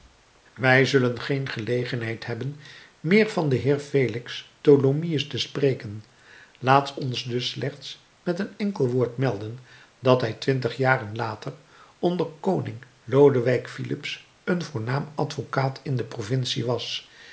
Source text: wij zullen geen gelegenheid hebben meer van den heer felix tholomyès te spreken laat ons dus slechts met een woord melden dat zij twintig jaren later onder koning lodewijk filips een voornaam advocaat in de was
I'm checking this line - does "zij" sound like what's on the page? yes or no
no